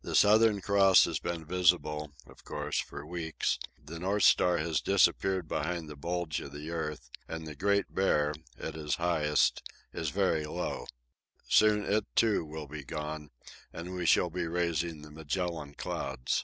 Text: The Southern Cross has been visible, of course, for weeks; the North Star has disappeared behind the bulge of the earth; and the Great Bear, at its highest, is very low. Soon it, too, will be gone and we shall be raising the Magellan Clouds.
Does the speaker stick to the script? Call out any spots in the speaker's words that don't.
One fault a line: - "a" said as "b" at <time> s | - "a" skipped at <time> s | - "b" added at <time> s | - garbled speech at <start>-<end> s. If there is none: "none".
none